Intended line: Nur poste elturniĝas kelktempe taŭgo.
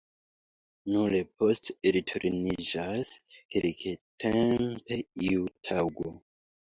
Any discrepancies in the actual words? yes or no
yes